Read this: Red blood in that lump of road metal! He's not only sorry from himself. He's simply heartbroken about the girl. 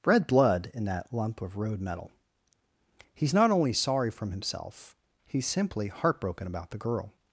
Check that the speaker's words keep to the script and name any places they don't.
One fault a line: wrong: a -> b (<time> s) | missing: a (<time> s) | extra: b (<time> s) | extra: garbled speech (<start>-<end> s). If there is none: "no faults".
no faults